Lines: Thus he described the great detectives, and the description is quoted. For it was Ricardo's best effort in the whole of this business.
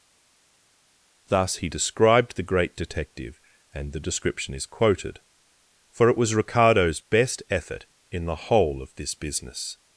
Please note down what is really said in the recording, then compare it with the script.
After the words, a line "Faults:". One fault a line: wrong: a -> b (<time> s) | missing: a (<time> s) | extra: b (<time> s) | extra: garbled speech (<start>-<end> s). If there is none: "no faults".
Thus he described the great detective, and the description is quoted. For it was Ricardo's best effort in the whole of this business.
Faults:
wrong: detectives -> detective (2.8 s)